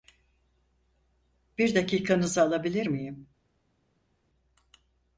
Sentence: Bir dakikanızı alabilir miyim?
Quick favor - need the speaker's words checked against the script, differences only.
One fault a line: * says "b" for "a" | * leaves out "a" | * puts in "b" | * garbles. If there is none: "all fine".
all fine